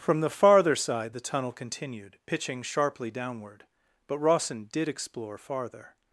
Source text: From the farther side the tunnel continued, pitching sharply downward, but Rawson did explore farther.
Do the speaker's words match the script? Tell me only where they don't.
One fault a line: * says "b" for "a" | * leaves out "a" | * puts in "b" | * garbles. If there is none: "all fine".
all fine